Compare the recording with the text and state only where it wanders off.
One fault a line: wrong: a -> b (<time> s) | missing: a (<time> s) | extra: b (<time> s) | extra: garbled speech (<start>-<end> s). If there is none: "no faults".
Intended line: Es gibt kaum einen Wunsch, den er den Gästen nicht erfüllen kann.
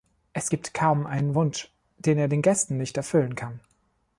no faults